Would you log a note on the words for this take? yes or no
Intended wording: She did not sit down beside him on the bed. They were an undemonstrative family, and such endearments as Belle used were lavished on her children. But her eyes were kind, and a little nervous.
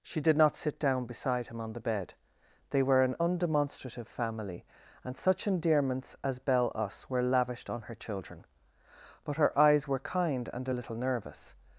yes